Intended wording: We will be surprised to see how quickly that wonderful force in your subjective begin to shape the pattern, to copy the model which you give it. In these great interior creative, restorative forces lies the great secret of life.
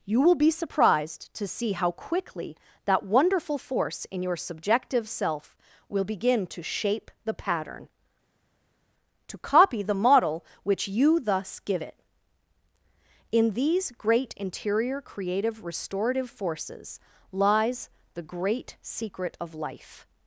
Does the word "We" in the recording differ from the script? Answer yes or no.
yes